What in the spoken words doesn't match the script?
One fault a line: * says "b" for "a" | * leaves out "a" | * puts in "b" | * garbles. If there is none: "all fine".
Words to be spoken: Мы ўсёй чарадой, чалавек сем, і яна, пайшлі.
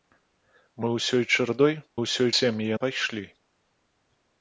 * says "ўсёй" for "чалавек"
* leaves out "яна"